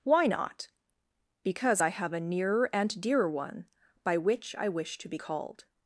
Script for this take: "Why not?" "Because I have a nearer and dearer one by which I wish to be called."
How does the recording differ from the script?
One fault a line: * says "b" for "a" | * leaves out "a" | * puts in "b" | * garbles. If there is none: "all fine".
all fine